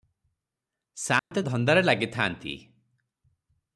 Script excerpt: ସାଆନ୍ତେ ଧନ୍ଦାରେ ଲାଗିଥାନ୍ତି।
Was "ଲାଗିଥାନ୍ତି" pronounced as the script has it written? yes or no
yes